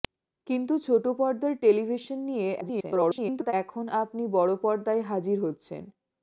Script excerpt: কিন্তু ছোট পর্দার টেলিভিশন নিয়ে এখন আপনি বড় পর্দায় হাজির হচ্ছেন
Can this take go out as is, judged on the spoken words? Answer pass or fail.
fail